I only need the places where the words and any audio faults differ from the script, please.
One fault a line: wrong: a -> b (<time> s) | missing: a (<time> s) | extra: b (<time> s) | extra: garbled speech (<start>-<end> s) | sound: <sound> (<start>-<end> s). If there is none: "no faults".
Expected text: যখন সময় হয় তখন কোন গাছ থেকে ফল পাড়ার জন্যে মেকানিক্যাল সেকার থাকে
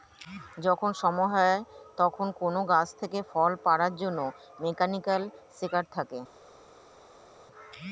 no faults